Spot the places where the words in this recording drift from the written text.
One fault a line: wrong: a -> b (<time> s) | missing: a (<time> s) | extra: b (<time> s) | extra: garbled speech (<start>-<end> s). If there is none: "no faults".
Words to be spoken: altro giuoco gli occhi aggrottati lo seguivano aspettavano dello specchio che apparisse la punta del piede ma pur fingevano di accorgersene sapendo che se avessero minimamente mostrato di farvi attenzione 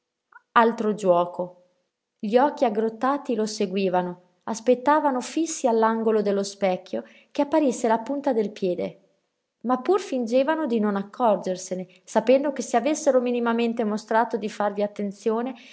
extra: fissi all'angolo (5.2 s)
extra: non (10.8 s)